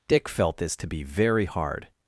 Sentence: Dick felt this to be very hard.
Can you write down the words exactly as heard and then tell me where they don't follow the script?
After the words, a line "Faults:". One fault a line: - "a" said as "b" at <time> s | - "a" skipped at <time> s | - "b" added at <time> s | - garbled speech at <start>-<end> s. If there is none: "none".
Dick felt this to be very hard.
Faults:
none